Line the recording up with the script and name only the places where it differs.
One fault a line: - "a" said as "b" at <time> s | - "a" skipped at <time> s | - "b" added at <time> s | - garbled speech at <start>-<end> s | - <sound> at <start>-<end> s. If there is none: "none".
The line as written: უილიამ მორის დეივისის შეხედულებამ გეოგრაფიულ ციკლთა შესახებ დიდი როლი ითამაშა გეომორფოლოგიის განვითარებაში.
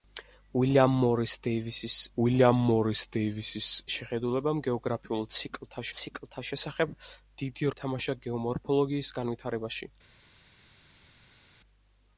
- "უილიამ მორის დეივისის" added at 2.2 s
- "ციკლთა" added at 6.0 s
- "როლი" skipped at 7.7 s